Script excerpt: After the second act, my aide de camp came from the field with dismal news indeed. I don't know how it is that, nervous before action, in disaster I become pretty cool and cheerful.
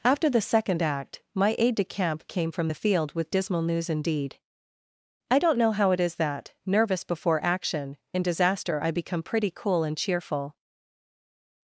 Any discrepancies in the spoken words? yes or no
no